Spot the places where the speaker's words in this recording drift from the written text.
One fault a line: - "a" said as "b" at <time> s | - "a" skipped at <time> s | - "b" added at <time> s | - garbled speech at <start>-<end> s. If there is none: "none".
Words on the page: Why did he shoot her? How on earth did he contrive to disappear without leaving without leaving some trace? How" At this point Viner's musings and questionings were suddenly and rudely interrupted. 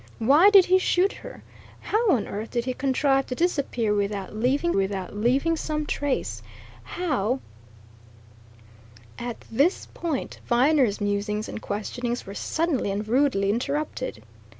none